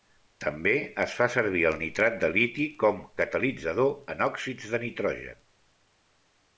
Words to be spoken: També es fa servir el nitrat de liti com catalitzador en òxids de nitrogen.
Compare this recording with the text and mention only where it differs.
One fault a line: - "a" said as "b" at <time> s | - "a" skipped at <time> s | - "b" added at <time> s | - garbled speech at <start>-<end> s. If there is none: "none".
none